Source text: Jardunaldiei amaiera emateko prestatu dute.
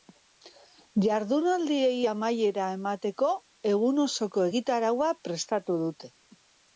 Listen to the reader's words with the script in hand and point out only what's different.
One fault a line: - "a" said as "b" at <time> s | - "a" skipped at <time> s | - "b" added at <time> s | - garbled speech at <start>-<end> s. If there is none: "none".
- "egun osoko egitaraua" added at 3.7 s